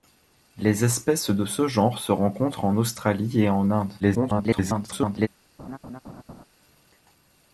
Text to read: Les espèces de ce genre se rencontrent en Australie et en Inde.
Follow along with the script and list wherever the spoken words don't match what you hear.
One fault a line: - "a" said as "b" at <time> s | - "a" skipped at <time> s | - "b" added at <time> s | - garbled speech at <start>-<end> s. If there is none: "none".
- garbled speech at 4.0-5.3 s